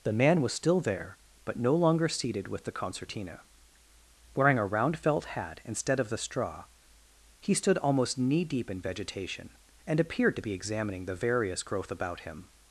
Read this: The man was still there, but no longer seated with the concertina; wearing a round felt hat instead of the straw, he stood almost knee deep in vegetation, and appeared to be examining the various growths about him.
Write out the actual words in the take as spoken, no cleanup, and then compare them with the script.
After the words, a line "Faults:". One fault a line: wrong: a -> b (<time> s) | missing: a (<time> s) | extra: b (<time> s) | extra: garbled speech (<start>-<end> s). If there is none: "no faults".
The man was still there, but no longer seated with the concertina; wearing a round felt hat instead of the straw, he stood almost knee deep in vegetation, and appeared to be examining the various growth about him.
Faults:
wrong: growths -> growth (11.6 s)